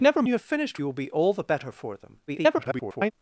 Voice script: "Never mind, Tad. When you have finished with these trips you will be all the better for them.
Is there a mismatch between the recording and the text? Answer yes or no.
yes